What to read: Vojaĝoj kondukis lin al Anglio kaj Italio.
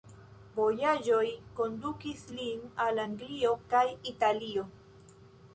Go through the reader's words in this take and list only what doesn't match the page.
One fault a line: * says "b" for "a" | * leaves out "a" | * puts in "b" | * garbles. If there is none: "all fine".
all fine